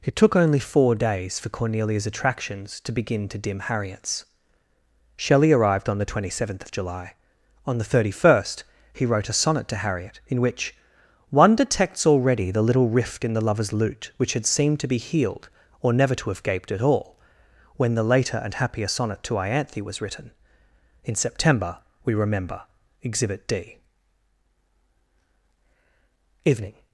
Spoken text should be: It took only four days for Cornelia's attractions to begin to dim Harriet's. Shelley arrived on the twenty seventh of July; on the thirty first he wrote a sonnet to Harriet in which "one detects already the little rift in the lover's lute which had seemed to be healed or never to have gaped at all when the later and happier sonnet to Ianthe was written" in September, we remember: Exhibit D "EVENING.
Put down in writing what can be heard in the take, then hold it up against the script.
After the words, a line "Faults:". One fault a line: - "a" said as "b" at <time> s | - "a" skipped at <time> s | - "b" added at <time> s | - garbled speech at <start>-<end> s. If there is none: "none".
It took only four days for Cornelia's attractions to begin to dim Harriet's. Shelley arrived on the twenty seventh of July; on the thirty first he wrote a sonnet to Harriet in which "one detects already the little rift in the lover's lute which had seemed to be healed or never to have gaped at all when the later and happier sonnet to Ianthe was written" in September, we remember: Exhibit D "EVENING.
Faults:
none